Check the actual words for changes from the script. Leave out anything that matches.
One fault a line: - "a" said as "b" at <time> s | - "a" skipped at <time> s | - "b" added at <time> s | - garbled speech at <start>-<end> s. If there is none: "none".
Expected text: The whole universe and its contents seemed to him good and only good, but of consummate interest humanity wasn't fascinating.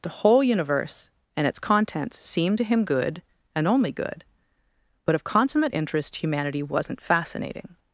none